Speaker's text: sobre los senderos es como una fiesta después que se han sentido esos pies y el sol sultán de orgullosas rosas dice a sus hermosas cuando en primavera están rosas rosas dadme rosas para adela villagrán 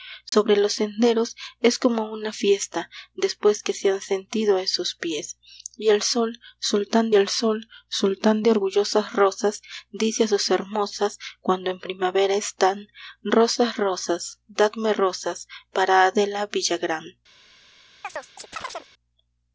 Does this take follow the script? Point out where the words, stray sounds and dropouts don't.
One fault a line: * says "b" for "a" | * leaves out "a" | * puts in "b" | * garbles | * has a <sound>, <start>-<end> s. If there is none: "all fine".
* has a dropout, 0.3-0.3 s
* puts in "el sol sultán"
* has a chirp, 18.0-18.9 s